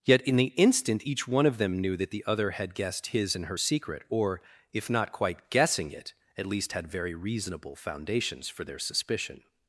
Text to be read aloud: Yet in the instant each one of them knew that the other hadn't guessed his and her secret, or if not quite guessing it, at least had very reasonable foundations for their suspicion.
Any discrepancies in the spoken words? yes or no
yes